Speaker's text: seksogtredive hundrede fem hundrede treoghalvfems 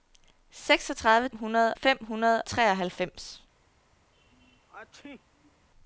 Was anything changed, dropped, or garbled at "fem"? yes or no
no